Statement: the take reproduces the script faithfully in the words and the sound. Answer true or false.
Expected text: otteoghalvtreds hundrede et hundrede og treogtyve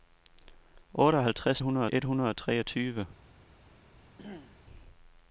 false